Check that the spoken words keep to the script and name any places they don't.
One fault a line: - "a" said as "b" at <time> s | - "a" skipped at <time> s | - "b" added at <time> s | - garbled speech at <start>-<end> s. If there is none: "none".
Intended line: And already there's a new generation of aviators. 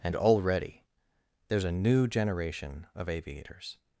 none